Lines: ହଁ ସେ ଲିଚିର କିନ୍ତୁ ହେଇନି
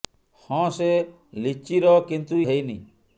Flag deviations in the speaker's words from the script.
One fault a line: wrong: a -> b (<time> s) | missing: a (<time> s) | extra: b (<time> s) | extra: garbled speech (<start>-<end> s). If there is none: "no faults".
no faults